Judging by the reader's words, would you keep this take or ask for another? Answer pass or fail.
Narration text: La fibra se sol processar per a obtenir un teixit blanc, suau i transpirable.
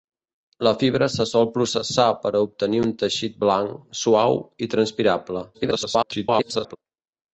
fail